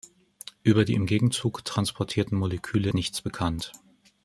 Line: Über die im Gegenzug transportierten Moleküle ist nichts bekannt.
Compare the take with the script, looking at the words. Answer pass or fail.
fail